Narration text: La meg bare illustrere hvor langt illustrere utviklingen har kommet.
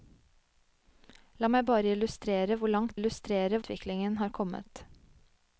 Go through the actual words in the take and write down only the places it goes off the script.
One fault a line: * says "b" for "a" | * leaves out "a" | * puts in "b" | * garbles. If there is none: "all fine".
all fine